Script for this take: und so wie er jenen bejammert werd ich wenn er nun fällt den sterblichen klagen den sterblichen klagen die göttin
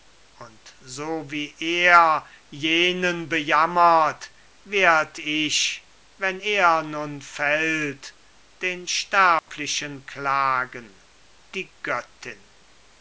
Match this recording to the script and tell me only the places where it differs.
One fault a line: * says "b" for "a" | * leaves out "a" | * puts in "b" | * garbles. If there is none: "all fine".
* leaves out "den sterblichen klagen"